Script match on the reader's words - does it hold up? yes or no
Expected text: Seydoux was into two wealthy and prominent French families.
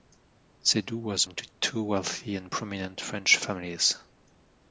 yes